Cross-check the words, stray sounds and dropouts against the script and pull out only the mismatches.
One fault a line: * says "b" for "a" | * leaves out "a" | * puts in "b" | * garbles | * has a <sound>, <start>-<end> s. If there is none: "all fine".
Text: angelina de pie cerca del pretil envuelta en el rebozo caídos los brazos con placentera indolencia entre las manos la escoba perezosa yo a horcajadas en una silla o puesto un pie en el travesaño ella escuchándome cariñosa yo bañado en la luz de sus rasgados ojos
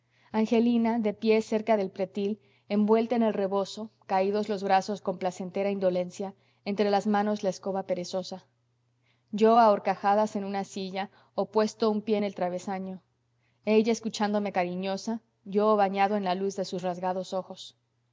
all fine